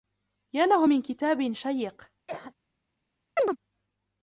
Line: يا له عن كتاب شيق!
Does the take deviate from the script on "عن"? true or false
true